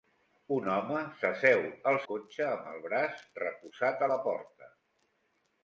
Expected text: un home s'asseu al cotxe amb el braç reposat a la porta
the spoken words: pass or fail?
pass